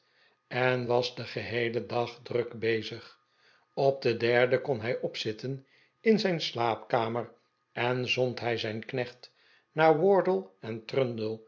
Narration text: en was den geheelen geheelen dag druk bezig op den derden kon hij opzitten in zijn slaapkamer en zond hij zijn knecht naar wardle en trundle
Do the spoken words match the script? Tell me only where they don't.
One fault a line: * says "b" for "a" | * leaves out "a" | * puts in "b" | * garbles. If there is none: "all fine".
* leaves out "geheelen"